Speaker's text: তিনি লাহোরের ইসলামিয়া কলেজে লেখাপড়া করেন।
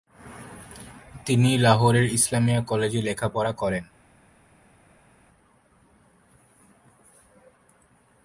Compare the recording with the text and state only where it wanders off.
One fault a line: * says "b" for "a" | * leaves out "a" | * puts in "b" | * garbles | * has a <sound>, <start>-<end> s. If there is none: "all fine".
all fine